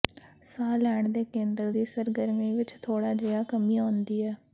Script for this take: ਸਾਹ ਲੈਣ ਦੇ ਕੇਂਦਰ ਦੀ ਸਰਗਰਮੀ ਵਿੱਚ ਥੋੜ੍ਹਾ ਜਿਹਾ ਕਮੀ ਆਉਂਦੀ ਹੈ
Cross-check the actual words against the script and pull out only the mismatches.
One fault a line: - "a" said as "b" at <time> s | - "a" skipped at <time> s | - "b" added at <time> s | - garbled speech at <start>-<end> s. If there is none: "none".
none